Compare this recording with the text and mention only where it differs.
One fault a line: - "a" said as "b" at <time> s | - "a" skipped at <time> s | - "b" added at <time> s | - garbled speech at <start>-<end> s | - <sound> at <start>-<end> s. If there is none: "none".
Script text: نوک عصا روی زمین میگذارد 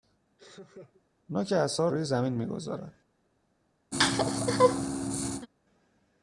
- laugh at 0.4-1.0 s
- laugh at 3.9-5.5 s